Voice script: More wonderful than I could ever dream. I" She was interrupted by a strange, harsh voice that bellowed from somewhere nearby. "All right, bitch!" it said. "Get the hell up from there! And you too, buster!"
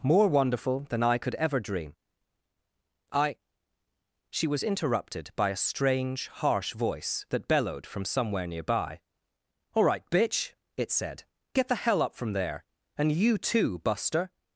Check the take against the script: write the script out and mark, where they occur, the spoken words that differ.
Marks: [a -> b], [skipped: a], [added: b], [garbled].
More wonderful than I could ever dream. I" She was interrupted by a strange, harsh voice that bellowed from somewhere nearby. "All right, bitch!" it said. "Get the hell up from there! And you too, buster!"